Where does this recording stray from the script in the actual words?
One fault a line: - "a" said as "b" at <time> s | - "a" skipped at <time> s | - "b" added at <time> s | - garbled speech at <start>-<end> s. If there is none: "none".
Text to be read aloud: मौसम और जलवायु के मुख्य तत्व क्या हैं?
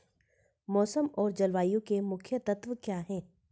none